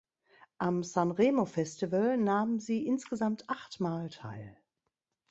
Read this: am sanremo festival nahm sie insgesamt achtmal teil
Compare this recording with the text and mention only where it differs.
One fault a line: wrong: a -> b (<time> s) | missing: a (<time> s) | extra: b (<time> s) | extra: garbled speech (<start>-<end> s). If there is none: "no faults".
no faults